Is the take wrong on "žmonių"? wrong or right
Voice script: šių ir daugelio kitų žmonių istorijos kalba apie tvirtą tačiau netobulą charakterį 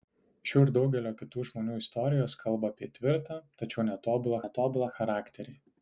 right